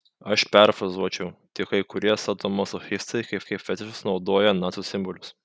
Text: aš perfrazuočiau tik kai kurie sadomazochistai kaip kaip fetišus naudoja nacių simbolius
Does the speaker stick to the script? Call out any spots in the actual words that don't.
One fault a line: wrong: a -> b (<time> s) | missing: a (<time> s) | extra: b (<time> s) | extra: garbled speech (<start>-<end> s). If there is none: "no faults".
no faults